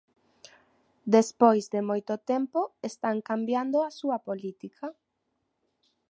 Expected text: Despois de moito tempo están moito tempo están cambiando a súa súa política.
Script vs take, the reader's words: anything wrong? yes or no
yes